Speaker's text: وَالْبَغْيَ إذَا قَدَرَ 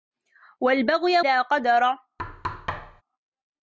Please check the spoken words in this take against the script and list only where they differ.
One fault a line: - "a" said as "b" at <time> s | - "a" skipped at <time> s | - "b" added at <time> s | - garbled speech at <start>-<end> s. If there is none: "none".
none